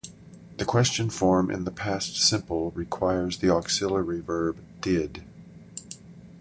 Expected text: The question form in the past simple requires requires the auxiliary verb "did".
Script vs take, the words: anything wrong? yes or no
yes